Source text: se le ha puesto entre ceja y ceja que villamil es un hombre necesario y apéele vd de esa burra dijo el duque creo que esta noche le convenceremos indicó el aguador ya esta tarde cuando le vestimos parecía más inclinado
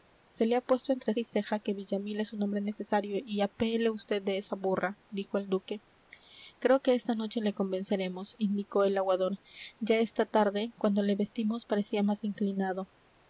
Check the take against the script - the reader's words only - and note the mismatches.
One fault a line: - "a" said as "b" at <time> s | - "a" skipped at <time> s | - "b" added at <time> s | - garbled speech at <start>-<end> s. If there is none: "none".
- "ceja" skipped at 1.1 s